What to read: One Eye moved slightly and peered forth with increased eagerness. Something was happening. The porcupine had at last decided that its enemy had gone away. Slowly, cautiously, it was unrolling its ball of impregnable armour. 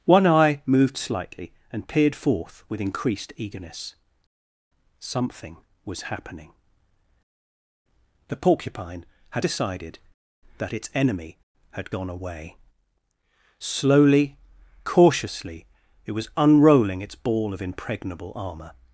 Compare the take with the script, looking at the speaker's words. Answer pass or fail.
fail